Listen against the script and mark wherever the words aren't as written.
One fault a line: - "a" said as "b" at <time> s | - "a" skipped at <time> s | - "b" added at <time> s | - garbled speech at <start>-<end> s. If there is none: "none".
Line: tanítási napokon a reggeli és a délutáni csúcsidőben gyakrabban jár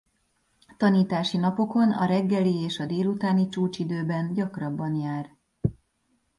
none